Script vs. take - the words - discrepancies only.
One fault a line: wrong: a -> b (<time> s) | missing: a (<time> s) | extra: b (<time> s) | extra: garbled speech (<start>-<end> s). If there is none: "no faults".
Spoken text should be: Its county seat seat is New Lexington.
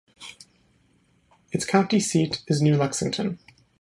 missing: seat (2.4 s)